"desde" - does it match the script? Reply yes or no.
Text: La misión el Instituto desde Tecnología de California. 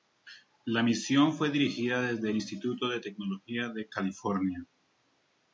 no